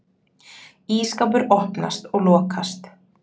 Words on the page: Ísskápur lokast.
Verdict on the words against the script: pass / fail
fail